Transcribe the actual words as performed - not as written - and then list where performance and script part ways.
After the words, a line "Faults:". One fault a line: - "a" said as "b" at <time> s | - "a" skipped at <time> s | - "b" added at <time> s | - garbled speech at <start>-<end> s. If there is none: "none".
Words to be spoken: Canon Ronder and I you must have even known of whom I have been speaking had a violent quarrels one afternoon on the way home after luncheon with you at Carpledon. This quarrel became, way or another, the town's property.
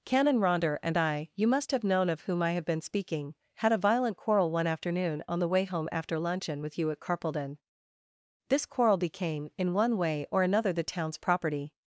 Canon Ronder and I you must have known of whom I have been speaking had a violent quarrel one afternoon on the way home after luncheon with you at Carpledon. This quarrel became, in one way or another, the town's property.
Faults:
- "even" skipped at 1.8 s
- "quarrels" said as "quarrel" at 4.2 s
- "in one" added at 9.6 s